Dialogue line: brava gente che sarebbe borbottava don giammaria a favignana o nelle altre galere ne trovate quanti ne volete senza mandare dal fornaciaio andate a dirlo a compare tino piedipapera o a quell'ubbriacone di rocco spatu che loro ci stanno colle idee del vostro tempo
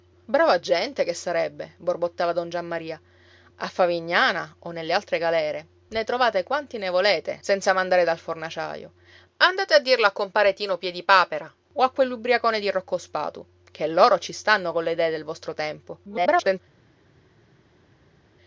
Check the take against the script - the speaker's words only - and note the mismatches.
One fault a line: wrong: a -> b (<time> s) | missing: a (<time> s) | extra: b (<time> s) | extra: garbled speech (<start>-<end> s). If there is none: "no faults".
extra: garbled speech (16.0-16.6 s)